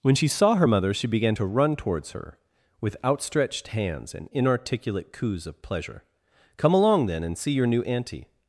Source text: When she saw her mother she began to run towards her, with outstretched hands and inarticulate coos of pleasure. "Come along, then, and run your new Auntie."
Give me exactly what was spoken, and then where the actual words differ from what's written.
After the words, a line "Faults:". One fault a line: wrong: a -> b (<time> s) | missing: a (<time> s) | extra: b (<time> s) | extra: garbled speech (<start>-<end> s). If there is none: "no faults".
When she saw her mother she began to run towards her, with outstretched hands and inarticulate coos of pleasure. "Come along, then, and see your new Auntie."
Faults:
wrong: run -> see (7.4 s)